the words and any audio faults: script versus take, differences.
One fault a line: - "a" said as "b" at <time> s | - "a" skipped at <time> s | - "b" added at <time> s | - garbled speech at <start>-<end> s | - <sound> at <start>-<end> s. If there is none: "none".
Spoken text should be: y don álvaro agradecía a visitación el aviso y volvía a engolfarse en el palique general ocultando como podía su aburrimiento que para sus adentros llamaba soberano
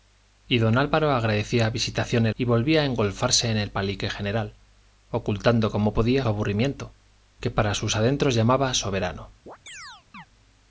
- "aviso" skipped at 2.4 s
- "su" skipped at 6.3 s
- chirp at 9.5-10.3 s